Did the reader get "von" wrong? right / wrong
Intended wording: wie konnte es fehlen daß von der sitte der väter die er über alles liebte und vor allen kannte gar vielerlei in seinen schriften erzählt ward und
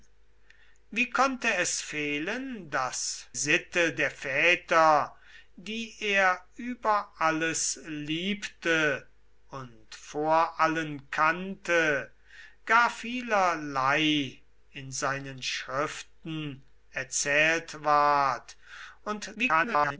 wrong